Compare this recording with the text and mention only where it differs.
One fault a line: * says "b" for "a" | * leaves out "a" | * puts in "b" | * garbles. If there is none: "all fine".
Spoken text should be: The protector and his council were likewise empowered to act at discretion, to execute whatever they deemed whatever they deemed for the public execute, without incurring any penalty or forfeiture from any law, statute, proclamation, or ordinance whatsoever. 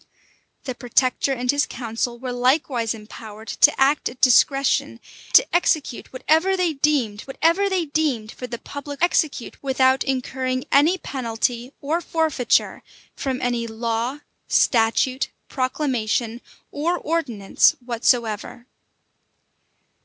all fine